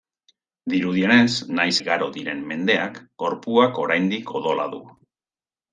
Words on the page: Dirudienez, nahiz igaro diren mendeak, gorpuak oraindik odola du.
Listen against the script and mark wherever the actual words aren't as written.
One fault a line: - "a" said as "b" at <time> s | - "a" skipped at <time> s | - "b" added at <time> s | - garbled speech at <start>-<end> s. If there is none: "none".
none